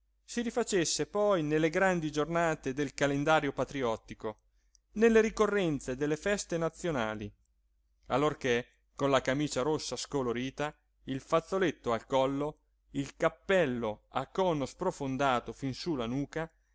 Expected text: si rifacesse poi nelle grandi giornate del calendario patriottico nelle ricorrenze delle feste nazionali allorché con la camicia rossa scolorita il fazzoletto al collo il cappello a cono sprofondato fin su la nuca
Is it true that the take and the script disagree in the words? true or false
false